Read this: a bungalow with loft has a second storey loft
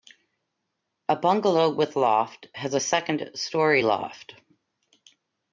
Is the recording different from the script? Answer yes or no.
no